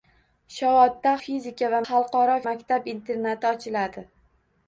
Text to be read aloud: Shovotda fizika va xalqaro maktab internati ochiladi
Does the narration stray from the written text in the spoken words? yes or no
no